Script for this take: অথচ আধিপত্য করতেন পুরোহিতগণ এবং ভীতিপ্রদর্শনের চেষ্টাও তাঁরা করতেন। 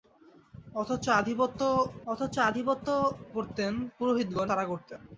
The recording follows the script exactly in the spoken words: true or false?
false